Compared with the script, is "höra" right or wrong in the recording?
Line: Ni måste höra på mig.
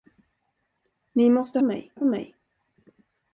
wrong